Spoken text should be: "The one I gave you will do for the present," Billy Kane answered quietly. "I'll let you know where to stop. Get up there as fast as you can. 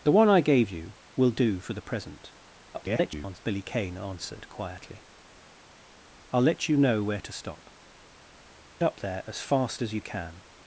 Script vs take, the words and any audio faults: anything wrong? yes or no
yes